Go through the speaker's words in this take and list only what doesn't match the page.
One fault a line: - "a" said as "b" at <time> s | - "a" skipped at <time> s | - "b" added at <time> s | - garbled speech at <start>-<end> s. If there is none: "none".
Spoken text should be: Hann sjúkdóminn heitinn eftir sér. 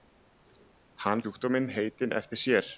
none